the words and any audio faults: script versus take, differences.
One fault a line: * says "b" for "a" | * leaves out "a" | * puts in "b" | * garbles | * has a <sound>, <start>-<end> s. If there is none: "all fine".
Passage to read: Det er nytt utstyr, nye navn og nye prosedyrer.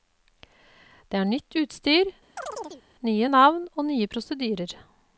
* has a chirp, 2.4-2.8 s